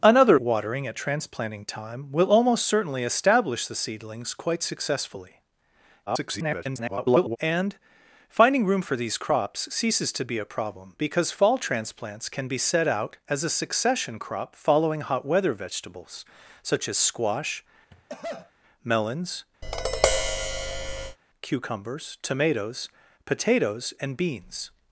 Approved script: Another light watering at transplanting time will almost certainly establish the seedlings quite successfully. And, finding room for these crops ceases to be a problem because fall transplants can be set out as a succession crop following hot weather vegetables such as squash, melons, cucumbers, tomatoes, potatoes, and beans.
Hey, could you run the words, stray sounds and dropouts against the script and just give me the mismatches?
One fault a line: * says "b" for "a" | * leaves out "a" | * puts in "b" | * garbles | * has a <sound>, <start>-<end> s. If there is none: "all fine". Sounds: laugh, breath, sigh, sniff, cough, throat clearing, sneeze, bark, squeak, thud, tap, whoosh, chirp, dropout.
* leaves out "light"
* garbles
* has a cough, 17.9-18.5 s
* has a tap, 19.6-21.2 s